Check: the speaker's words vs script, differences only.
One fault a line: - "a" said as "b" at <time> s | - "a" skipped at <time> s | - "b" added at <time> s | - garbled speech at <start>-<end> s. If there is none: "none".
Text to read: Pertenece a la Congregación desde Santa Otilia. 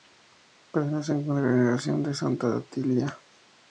- "desde" said as "de" at 2.0 s